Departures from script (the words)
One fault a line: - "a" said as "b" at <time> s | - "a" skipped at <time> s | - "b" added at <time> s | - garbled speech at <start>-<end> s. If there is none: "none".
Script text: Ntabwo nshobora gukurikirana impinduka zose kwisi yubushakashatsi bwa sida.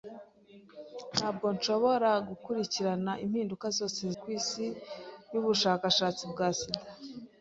none